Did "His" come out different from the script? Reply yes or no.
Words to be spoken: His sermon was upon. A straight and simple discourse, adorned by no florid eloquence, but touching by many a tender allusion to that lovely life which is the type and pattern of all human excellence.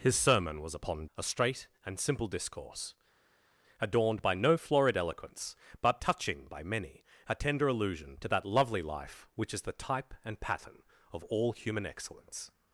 no